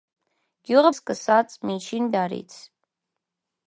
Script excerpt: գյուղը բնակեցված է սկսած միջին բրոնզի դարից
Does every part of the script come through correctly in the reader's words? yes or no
no